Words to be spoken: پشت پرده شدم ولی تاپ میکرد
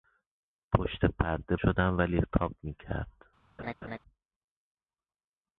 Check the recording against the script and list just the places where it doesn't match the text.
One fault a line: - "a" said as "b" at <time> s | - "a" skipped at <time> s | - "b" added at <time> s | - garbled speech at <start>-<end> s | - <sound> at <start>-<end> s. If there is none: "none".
- laugh at 3.6-4.0 s